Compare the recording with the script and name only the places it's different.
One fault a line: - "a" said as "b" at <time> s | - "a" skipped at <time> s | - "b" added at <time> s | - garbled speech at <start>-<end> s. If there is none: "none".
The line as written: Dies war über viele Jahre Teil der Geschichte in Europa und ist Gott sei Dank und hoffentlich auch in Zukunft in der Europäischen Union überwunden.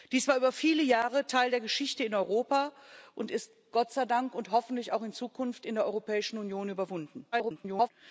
- garbled speech at 7.3-7.9 s